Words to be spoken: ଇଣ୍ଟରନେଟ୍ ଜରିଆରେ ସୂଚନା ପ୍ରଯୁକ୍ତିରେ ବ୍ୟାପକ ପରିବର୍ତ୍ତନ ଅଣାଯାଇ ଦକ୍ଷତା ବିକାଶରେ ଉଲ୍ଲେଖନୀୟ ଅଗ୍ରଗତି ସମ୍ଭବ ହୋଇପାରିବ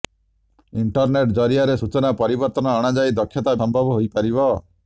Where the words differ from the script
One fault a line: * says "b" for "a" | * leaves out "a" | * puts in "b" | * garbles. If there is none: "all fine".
* leaves out "ପ୍ରଯୁକ୍ତିରେ ବ୍ୟାପକ"
* leaves out "ବିକାଶରେ ଉଲ୍ଲେଖନୀୟ ଅଗ୍ରଗତି"